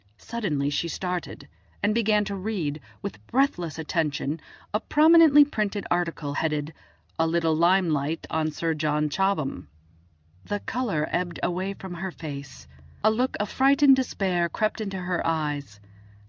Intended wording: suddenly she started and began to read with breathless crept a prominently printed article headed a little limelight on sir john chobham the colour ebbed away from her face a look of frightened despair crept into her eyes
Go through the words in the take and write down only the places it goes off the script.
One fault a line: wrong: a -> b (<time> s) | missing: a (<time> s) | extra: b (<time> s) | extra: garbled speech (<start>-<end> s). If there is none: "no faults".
wrong: crept -> attention (3.8 s)